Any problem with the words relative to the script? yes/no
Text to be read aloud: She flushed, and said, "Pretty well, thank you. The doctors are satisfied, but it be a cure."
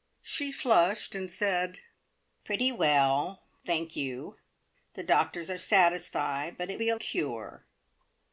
no